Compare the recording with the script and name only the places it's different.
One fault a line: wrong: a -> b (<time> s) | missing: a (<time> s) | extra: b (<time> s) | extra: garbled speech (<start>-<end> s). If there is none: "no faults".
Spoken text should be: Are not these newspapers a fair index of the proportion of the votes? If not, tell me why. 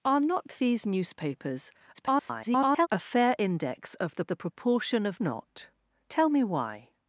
extra: garbled speech (1.9-2.9 s)
extra: the (4.3 s)
missing: the votes If (5.2 s)